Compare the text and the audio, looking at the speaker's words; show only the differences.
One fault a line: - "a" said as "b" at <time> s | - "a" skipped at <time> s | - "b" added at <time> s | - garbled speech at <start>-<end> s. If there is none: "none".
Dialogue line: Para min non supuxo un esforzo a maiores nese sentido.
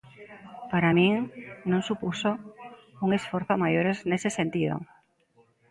none